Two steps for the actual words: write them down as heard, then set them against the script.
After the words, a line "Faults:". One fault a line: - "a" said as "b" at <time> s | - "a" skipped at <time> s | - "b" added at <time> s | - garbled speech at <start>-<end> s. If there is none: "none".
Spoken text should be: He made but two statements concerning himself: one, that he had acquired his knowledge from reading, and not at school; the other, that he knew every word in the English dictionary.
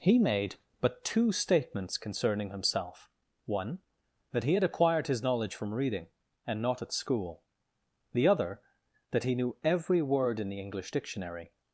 He made but two statements concerning himself: one, that he had acquired his knowledge from reading, and not at school; the other, that he knew every word in the English dictionary.
Faults:
none